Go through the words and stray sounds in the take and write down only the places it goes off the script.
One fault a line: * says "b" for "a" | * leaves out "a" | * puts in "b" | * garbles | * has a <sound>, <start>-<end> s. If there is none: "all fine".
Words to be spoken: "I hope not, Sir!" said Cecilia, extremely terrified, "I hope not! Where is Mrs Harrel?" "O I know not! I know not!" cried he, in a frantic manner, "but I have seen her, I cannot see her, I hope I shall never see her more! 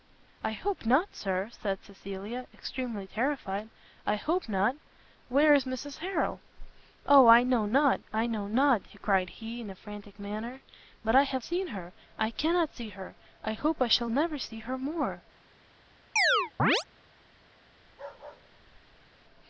* has a chirp, 16.2-16.8 s
* has a bark, 17.8-19.3 s